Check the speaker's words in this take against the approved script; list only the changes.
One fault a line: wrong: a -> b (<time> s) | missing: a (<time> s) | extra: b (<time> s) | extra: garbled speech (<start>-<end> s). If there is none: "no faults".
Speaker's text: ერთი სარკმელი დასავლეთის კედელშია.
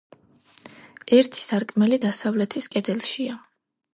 no faults